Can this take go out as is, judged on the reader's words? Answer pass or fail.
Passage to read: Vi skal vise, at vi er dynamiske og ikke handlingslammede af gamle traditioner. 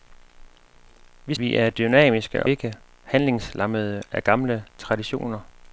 fail